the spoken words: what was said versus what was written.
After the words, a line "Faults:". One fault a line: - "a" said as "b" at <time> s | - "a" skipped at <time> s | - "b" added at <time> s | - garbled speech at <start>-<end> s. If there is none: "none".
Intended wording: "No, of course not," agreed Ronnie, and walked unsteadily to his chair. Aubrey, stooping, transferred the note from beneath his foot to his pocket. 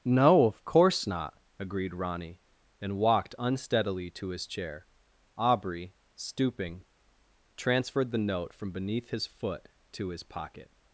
"No, of course not," agreed Ronnie, and walked unsteadily to his chair. Aubrey, stooping, transferred the note from beneath his foot to his pocket.
Faults:
none